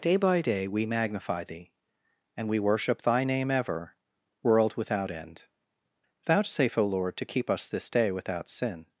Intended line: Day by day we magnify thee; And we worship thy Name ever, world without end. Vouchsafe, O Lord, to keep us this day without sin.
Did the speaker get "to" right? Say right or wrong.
right